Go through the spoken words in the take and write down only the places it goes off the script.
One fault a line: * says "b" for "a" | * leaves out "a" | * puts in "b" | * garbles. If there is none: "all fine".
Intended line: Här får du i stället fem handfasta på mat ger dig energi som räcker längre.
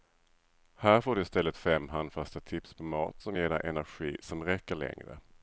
* puts in "tips"
* puts in "som"